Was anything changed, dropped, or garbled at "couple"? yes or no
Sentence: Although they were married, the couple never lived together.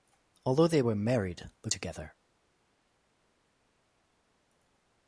yes